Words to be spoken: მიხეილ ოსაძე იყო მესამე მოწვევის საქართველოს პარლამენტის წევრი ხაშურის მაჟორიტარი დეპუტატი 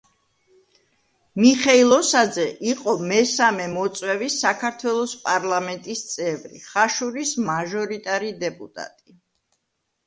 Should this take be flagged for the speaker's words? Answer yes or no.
no